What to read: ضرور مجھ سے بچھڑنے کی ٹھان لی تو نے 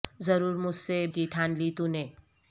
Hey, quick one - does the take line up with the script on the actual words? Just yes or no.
no